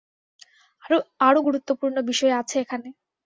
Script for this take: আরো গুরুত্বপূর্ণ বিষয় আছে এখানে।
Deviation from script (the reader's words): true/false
false